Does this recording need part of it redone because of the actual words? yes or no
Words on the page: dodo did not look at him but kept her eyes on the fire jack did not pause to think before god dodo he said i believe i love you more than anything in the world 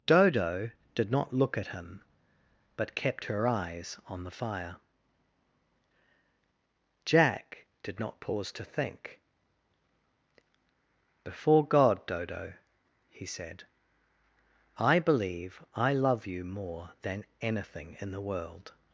no